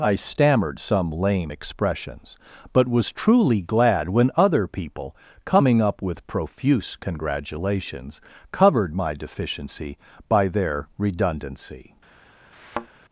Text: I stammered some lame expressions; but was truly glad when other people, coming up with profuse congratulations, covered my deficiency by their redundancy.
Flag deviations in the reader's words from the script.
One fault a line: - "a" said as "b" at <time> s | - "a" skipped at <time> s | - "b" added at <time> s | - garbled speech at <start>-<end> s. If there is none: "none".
none